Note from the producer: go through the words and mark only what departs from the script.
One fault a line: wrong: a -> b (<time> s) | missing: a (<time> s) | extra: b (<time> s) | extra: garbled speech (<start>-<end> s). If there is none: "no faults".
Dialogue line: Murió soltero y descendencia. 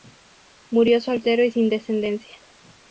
extra: sin (1.5 s)